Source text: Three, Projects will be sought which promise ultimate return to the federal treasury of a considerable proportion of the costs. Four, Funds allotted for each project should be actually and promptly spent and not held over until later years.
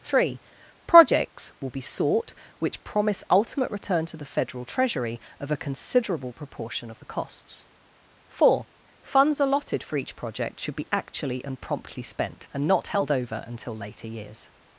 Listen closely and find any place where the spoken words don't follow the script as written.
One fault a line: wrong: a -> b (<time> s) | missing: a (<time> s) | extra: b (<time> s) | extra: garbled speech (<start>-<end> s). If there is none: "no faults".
no faults